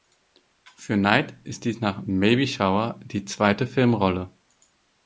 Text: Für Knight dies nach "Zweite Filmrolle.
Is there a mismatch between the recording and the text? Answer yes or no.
yes